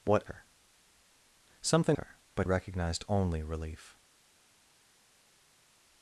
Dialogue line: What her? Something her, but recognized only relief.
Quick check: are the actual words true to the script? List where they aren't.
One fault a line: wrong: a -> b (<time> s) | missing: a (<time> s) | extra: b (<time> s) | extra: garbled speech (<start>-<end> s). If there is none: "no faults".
no faults